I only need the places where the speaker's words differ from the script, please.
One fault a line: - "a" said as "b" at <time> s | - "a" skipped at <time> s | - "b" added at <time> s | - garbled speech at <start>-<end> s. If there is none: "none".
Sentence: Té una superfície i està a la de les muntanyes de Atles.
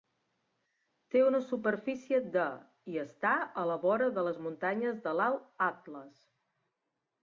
- "de" added at 2.4 s
- "vora" added at 3.9 s
- "l'Alt" added at 5.2 s